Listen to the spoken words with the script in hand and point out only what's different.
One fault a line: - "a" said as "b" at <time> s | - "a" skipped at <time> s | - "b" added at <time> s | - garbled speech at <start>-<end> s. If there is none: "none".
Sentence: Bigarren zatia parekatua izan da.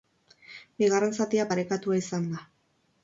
none